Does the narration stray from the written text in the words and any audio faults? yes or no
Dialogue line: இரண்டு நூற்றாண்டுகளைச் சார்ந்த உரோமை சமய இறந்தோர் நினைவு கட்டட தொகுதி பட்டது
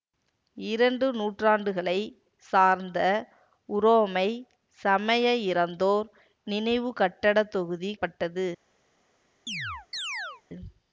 yes